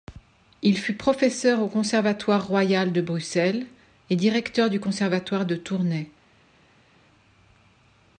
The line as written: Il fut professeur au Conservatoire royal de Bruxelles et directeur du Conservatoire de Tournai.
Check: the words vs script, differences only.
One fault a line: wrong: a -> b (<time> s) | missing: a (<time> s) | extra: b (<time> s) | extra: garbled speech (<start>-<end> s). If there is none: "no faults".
no faults